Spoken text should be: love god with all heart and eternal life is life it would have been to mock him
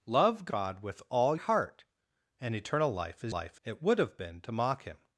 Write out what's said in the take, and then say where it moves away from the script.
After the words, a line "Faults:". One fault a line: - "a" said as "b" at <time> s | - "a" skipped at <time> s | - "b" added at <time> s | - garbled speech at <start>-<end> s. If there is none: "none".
love god with all heart and eternal life is life it would have been to mock him
Faults:
none